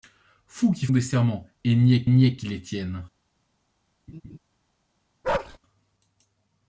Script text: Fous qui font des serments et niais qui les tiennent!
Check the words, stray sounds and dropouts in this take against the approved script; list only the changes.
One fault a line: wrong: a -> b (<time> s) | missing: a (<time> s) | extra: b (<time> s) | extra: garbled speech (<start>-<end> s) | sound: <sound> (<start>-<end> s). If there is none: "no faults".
missing: font (0.9 s)
extra: niais (2.1 s)
sound: laugh (4.1-4.4 s)
sound: bark (5.2-5.6 s)